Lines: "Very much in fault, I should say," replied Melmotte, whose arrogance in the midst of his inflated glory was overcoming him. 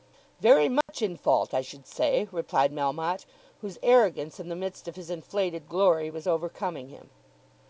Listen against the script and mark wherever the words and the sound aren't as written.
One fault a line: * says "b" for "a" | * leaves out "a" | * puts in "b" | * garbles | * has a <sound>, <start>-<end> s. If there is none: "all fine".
* has a dropout, 0.8-0.9 s